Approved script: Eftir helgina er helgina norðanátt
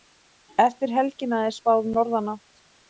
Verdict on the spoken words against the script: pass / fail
fail